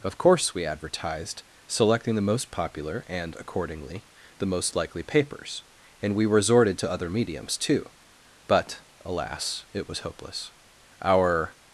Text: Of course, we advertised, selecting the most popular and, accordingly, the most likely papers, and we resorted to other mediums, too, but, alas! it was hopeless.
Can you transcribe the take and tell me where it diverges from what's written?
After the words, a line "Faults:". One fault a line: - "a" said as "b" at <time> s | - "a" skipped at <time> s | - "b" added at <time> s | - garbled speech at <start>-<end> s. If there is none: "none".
Of course, we advertised, selecting the most popular and, accordingly, the most likely papers, and we resorted to other mediums, too, but, alas! it was hopeless. Our
Faults:
- "Our" added at 11.0 s